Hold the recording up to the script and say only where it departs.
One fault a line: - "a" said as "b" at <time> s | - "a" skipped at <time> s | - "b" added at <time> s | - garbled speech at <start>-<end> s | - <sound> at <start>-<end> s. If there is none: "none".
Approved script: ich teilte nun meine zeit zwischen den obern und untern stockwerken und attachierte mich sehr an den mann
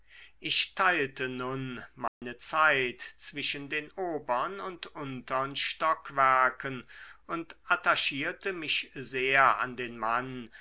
- dropout at 2.1-2.2 s